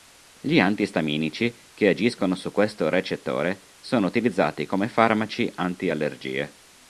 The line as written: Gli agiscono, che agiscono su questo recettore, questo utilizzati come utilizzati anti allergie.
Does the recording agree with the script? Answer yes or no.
no